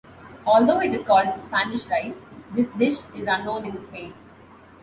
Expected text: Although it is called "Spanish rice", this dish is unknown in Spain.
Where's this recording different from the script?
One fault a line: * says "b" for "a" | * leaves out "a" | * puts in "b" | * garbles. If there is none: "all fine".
all fine